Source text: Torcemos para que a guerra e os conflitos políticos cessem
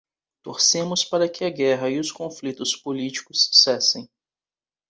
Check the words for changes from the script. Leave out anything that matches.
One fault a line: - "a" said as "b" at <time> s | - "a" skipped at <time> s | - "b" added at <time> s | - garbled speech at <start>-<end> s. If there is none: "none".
none